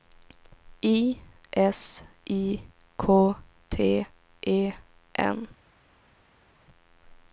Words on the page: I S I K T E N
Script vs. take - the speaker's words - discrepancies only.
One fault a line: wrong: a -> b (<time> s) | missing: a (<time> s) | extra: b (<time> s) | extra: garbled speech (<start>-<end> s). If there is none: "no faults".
no faults